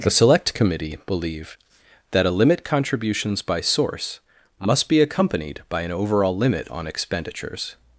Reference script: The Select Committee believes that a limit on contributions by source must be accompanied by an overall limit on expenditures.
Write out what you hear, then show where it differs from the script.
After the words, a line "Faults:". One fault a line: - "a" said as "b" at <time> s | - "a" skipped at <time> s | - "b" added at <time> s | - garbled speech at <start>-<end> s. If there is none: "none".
The Select Committee believe that a limit contributions by source must be accompanied by an overall limit on expenditures.
Faults:
- "believes" said as "believe" at 1.1 s
- "on" skipped at 2.6 s